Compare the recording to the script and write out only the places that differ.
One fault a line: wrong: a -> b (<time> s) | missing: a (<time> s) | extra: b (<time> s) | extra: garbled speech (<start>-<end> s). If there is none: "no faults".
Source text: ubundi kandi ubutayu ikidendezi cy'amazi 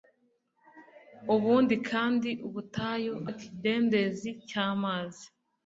no faults